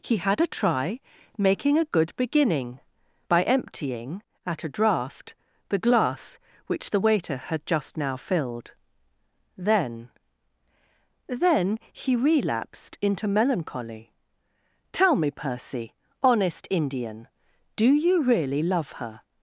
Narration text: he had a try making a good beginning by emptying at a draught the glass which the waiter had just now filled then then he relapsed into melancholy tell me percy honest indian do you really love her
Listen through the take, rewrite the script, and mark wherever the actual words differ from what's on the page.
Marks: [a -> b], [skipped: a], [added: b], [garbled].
he had a try making a good beginning by emptying at a draught the glass which the waiter had just now filled then then he relapsed into melancholy tell me percy honest indian do you really love her